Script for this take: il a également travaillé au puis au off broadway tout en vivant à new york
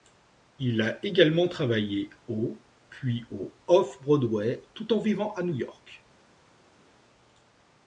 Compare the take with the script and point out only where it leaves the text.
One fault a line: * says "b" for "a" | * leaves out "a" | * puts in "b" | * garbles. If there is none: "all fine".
all fine